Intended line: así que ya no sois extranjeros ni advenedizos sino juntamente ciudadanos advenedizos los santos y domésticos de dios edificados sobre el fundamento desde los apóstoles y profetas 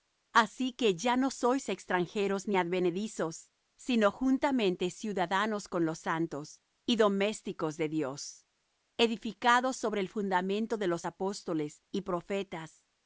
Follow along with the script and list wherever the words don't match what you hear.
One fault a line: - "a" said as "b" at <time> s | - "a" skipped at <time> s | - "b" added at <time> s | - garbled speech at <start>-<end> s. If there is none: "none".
- "advenedizos" said as "con" at 5.7 s
- "desde" said as "de" at 10.8 s